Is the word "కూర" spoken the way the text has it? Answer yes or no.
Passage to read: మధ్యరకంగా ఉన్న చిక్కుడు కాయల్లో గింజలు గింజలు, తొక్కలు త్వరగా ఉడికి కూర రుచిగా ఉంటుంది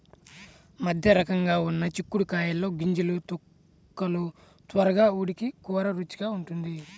yes